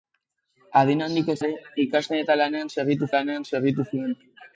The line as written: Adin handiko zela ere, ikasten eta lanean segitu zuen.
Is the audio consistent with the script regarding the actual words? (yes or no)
no